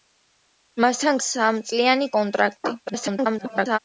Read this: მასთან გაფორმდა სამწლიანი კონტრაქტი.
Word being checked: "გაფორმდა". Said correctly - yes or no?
no